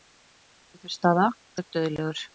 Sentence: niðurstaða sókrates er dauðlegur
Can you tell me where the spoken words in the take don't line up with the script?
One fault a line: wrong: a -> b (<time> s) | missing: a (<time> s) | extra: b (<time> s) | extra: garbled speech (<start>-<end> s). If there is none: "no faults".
missing: sókrates (1.3 s)